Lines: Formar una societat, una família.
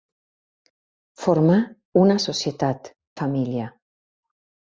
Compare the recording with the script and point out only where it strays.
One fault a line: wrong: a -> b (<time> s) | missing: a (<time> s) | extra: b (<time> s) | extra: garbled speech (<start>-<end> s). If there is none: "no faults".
missing: una (2.9 s)